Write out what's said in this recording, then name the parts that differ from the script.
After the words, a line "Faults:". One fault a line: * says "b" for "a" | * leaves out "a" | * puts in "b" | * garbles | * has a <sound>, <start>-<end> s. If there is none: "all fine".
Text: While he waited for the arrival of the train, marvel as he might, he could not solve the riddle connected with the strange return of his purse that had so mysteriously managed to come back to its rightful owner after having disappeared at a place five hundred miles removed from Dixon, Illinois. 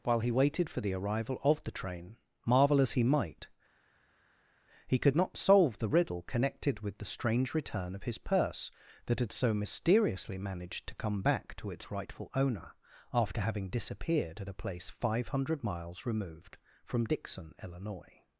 While he waited for the arrival of the train, marvel as he might, he could not solve the riddle connected with the strange return of his purse that had so mysteriously managed to come back to its rightful owner after having disappeared at a place five hundred miles removed from Dixon, Illinois.
Faults:
all fine